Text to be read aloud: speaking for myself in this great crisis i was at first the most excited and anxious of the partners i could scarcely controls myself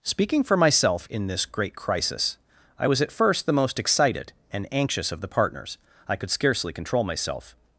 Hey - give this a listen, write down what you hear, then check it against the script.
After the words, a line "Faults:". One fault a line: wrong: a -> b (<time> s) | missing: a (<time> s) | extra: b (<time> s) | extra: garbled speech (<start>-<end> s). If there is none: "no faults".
speaking for myself in this great crisis i was at first the most excited and anxious of the partners i could scarcely control myself
Faults:
wrong: controls -> control (6.7 s)